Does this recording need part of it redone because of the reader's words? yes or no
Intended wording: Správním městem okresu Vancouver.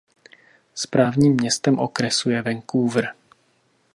yes